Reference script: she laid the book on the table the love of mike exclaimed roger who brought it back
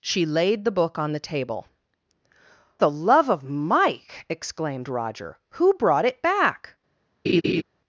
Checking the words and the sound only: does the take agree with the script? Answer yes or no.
no